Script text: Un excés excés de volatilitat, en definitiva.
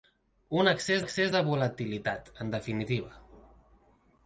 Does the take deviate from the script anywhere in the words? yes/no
no